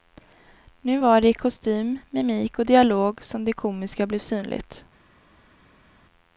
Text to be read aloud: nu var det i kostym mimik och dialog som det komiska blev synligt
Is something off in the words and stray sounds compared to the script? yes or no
no